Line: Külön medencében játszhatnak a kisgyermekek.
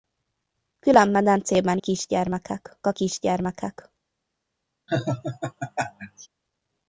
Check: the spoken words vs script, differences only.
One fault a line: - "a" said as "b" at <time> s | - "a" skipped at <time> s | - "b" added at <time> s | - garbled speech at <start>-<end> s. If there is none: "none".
- "játszhatnak" said as "kisgyermekek" at 1.8 s